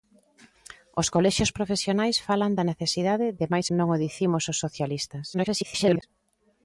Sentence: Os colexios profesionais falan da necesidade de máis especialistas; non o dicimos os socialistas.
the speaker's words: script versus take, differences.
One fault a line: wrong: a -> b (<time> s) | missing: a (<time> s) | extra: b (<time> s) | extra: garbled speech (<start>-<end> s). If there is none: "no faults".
missing: especialistas (3.7 s)
extra: garbled speech (5.3-6.0 s)